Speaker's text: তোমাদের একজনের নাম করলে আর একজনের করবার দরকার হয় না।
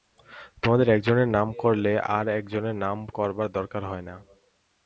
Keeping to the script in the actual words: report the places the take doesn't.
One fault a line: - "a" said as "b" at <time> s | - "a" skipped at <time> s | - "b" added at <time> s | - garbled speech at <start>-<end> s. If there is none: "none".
- "নাম" added at 2.8 s